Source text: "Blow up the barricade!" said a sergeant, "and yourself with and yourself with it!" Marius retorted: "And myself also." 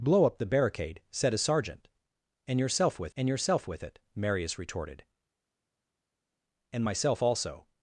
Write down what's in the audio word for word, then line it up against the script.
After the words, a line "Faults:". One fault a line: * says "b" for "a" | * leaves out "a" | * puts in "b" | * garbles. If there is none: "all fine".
"Blow up the barricade!" said a sergeant, "and yourself with and yourself with it!" Marius retorted: "And myself also."
Faults:
all fine